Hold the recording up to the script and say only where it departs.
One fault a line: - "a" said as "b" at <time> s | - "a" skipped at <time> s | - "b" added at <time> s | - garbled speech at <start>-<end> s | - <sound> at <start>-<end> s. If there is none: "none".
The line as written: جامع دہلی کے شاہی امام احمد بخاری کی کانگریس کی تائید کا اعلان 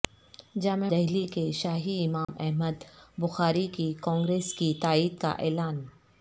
- dropout at 2.2-2.3 s